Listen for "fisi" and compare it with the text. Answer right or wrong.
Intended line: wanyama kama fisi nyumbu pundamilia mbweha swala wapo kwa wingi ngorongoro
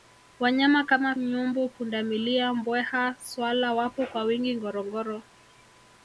wrong